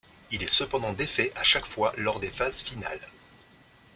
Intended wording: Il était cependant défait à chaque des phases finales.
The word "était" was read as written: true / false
false